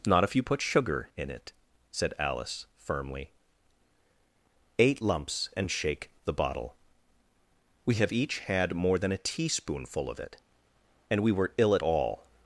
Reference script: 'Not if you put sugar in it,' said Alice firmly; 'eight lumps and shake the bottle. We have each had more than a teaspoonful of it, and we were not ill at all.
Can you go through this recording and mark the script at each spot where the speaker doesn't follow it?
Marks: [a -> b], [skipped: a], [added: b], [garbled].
'Not if you put sugar in it,' said Alice firmly; 'eight lumps and shake the bottle. We have each had more than a teaspoonful of it, and we were [skipped: not] ill at all.